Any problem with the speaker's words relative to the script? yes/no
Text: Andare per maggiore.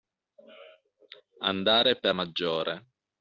no